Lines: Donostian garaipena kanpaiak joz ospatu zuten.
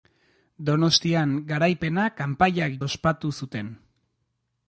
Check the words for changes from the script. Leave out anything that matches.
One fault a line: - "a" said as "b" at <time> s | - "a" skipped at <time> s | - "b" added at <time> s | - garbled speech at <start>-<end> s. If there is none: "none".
- "joz" skipped at 2.8 s